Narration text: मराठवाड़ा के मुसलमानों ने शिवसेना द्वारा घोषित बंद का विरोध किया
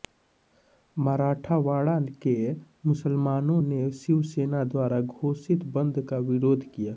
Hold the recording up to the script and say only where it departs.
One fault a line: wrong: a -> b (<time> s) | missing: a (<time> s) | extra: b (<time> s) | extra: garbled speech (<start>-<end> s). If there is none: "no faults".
no faults